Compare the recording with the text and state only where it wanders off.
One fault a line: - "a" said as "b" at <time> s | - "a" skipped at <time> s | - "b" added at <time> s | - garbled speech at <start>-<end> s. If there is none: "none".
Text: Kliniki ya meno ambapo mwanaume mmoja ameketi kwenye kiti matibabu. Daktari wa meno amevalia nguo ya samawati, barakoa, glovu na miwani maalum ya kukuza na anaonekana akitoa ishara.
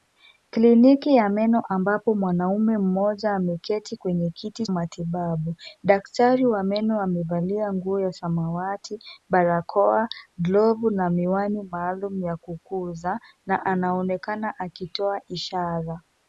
none